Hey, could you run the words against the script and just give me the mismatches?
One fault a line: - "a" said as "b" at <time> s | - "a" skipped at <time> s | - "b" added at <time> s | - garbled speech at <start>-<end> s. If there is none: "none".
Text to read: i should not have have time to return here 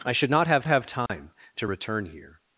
none